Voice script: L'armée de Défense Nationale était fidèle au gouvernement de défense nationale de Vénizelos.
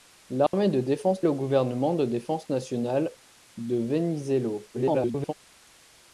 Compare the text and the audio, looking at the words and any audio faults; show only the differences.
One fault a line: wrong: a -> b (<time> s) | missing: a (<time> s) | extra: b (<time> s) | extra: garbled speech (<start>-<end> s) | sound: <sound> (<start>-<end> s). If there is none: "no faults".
sound: dropout (0.5-0.5 s)
missing: Nationale était fidèle (1.2 s)
extra: garbled speech (4.7-5.3 s)